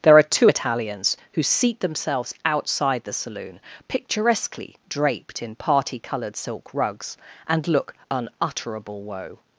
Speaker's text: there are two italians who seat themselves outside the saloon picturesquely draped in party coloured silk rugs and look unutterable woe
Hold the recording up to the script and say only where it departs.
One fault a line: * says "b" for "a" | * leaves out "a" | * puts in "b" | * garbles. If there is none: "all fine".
all fine